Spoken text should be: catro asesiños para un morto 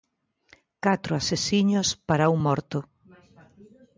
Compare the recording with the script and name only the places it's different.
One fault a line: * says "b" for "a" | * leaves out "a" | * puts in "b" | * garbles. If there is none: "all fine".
all fine